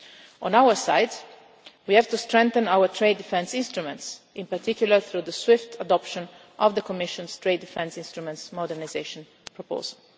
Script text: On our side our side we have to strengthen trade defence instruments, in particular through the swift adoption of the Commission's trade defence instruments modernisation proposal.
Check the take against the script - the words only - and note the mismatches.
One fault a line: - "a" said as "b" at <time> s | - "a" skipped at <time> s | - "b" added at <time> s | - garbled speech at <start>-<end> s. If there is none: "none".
- "our side" skipped at 1.1 s
- "our" added at 2.7 s